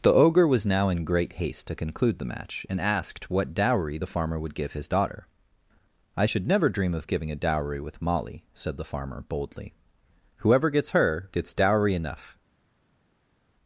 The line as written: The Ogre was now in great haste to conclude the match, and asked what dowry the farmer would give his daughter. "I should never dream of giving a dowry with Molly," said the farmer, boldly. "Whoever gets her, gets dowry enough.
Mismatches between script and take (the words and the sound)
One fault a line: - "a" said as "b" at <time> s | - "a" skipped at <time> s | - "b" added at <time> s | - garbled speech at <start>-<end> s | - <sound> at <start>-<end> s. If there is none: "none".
none